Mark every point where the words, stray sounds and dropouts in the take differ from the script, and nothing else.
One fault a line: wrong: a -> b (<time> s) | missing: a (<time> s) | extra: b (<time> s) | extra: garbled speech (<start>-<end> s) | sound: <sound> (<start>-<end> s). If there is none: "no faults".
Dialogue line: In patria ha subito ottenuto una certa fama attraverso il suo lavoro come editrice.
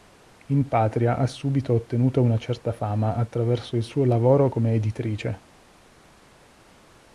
no faults